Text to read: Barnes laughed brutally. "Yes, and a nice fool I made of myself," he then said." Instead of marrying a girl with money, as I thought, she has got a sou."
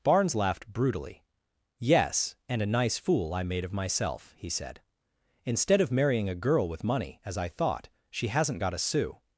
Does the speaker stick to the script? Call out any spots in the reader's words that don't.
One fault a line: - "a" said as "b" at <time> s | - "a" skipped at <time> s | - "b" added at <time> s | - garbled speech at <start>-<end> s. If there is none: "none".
- "then" skipped at 4.5 s
- "has" said as "hasn't" at 8.3 s